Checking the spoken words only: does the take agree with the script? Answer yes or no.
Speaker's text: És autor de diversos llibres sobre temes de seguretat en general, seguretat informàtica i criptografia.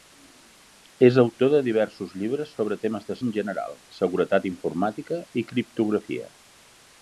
no